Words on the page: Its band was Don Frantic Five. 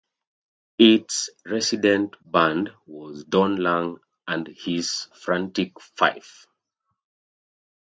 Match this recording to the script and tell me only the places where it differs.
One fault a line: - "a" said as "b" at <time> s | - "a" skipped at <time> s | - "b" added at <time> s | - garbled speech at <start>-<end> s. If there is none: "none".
- "resident" added at 1.4 s
- "Lang and his" added at 3.6 s